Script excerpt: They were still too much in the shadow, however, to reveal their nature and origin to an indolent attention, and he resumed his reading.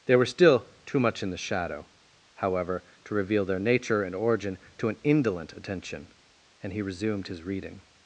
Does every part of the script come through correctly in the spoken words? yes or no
yes